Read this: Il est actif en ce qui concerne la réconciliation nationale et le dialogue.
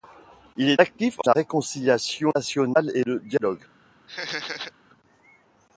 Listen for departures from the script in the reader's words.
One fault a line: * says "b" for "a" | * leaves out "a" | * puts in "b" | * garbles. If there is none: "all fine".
* leaves out "ce qui concerne"